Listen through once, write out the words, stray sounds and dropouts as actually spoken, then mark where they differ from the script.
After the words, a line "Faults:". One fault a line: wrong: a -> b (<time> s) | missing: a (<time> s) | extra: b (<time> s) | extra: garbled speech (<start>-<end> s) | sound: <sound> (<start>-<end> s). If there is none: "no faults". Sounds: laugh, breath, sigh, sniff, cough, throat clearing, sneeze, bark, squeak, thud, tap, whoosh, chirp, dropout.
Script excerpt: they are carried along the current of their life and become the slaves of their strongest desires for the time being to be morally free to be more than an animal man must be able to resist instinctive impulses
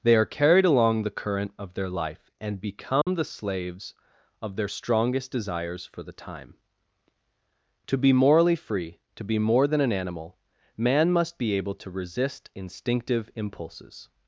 they are carried along the current of their life and become the slaves of their strongest desires for the time to be morally free to be more than an animal man must be able to resist instinctive impulses
Faults:
sound: dropout (3.0-3.1 s)
missing: being (6.5 s)